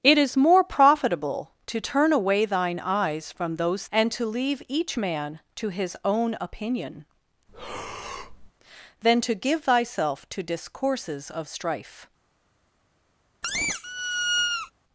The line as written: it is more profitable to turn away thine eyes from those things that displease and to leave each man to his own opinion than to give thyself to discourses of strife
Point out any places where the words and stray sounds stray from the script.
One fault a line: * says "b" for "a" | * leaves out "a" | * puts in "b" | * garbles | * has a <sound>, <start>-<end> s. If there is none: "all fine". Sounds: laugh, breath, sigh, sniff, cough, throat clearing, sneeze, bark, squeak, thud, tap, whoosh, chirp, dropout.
* leaves out "things that displease"
* has a breath, 7.5-8.5 s
* has a squeak, 13.4-14.7 s